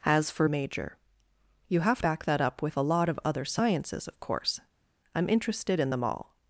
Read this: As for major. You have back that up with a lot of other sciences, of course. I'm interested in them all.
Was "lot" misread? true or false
false